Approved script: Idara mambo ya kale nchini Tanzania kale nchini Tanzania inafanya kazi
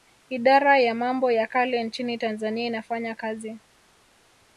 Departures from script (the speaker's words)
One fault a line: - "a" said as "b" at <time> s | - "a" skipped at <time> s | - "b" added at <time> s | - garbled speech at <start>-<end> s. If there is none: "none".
- "ya" added at 0.8 s
- "kale nchini Tanzania" skipped at 2.7 s